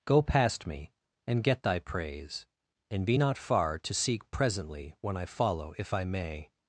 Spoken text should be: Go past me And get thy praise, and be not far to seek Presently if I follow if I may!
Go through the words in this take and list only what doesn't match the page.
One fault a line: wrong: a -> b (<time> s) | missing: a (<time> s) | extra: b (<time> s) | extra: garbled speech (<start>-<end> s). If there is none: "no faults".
wrong: if -> when (5.0 s)